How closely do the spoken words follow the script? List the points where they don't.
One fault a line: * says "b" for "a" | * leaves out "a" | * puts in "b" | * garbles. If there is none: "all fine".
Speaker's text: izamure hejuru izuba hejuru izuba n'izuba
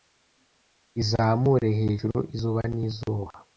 * leaves out "hejuru izuba"